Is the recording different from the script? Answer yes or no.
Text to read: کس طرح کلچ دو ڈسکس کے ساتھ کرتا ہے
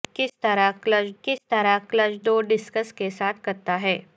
yes